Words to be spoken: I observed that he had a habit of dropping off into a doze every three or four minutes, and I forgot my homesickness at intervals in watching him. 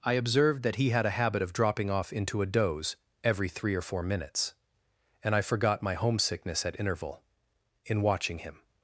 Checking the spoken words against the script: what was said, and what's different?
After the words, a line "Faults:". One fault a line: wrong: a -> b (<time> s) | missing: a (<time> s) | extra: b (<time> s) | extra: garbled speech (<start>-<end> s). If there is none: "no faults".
I observed that he had a habit of dropping off into a doze every three or four minutes, and I forgot my homesickness at interval in watching him.
Faults:
wrong: intervals -> interval (6.8 s)